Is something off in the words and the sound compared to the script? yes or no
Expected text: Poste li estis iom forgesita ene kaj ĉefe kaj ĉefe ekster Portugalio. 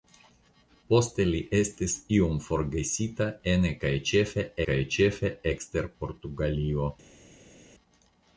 no